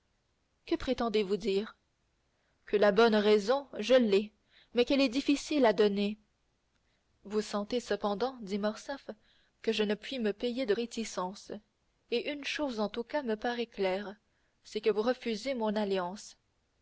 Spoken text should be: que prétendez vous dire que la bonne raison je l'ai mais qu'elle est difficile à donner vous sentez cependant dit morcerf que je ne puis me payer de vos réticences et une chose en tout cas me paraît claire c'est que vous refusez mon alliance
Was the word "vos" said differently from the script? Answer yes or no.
yes